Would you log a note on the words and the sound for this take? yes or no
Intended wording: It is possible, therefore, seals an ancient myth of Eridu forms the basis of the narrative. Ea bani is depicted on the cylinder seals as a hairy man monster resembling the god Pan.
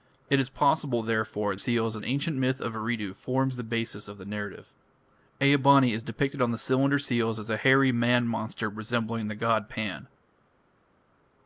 no